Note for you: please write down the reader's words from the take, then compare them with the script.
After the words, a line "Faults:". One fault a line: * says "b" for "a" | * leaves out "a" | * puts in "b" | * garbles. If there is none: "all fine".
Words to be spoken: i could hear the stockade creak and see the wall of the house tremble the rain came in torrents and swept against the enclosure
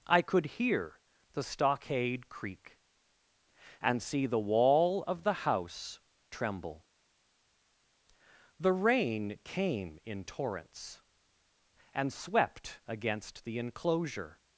i could hear the stockade creak and see the wall of the house tremble the rain came in torrents and swept against the enclosure
Faults:
all fine